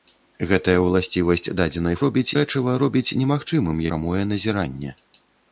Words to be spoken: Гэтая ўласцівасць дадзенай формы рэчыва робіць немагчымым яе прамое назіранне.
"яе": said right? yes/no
no